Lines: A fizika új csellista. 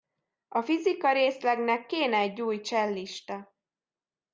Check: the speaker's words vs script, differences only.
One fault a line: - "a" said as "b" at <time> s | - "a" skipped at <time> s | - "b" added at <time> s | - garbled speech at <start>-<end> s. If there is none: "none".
- "részlegnek kéne egy" added at 1.1 s